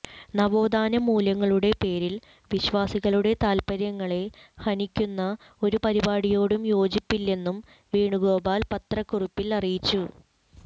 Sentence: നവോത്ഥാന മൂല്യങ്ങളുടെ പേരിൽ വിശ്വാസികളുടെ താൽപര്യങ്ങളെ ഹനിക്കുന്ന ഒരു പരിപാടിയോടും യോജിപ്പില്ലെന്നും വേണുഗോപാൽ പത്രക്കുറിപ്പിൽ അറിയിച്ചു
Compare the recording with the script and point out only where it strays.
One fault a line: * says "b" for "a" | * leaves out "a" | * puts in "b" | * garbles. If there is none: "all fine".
all fine